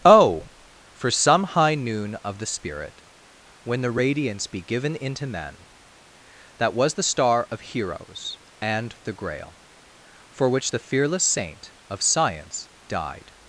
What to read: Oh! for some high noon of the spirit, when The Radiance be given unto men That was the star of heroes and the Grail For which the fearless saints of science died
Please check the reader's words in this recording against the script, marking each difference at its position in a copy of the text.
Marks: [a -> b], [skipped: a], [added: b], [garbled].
Oh! for some high noon of the spirit, when The Radiance be given [unto -> into] men That was the star of heroes and the Grail For which the fearless [saints -> saint] of science died